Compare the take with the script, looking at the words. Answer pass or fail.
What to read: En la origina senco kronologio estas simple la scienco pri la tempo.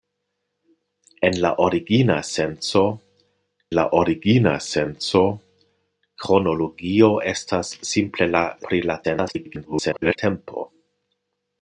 fail